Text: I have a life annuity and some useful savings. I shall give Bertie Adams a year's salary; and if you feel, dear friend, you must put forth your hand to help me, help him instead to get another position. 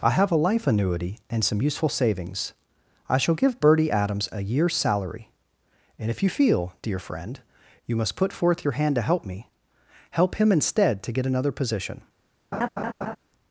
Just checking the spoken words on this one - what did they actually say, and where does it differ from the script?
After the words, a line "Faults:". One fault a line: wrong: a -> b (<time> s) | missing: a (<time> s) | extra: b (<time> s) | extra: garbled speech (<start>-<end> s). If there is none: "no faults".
I have a life annuity and some useful savings. I shall give Bertie Adams a year's salary; and if you feel, dear friend, you must put forth your hand to help me, help him instead to get another position.
Faults:
no faults